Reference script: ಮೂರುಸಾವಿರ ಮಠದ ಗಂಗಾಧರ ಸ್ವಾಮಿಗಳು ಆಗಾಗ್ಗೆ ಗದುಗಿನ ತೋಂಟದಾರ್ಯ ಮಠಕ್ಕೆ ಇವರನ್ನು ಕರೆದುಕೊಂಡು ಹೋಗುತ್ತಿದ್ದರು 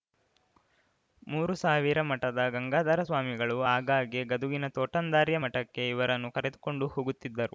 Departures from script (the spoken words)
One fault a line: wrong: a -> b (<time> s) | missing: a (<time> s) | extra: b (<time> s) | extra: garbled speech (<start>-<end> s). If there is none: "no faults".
no faults